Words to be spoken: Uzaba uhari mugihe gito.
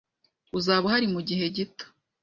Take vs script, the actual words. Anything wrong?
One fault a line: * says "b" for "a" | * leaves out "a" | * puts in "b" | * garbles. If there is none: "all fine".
all fine